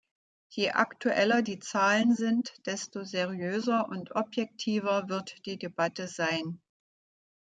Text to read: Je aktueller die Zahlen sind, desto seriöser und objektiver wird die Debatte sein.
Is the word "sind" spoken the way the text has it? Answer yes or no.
yes